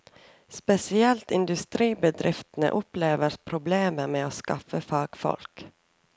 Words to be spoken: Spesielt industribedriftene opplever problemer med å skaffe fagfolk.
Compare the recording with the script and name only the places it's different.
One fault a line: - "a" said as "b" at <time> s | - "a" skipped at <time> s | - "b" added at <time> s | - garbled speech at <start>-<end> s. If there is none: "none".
none